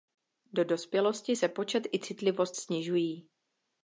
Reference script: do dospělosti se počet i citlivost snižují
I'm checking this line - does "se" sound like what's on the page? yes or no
yes